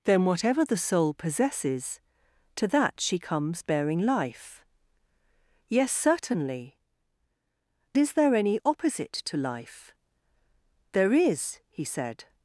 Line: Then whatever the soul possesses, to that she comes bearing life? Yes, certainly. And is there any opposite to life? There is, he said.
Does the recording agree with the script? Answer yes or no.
no